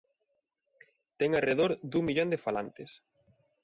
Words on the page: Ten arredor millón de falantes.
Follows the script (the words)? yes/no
no